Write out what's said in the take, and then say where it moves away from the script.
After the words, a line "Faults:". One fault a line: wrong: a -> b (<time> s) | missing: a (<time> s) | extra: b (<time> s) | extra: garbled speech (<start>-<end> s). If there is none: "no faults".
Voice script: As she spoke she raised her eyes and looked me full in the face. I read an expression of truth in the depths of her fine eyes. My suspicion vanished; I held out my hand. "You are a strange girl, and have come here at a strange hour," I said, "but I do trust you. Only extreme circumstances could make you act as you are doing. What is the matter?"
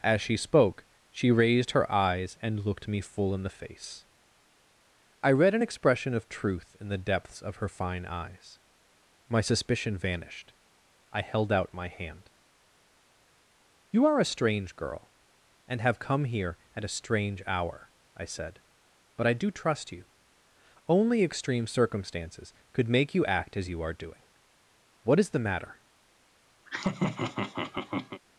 As she spoke she raised her eyes and looked me full in the face. I read an expression of truth in the depths of her fine eyes. My suspicion vanished; I held out my hand. "You are a strange girl, and have come here at a strange hour," I said, "but I do trust you. Only extreme circumstances could make you act as you are doing. What is the matter?"
Faults:
no faults